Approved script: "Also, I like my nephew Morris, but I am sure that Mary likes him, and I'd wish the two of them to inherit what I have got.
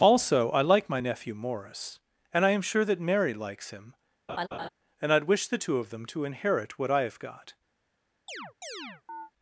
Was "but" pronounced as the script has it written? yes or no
no